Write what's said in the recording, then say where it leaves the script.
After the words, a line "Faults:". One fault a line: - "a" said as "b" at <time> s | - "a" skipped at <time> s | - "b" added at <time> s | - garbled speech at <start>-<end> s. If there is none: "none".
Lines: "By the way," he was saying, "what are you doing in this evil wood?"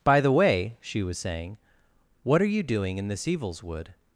"By the way," she was saying, "what are you doing in this evils wood?"
Faults:
- "he" said as "she" at 0.8 s
- "evil" said as "evils" at 3.3 s